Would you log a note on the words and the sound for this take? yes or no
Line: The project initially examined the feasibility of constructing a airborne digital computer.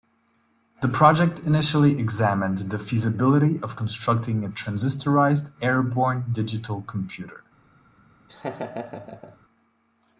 yes